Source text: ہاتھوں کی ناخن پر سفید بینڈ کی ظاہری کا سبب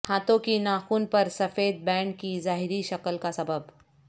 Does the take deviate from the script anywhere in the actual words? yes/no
yes